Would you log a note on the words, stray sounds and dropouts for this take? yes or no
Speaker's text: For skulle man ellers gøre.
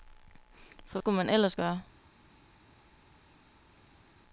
no